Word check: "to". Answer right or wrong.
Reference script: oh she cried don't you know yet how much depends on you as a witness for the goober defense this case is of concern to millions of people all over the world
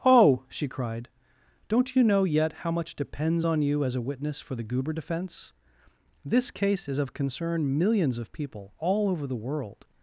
wrong